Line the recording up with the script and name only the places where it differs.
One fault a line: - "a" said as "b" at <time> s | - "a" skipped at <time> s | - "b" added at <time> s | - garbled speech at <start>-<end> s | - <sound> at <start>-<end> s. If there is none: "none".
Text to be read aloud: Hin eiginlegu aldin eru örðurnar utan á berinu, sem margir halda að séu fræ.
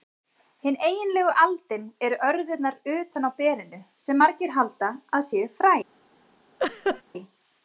- laugh at 6.6-7.0 s